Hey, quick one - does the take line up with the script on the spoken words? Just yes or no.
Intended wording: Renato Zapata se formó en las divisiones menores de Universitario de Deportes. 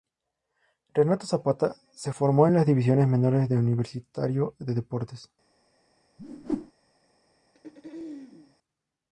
yes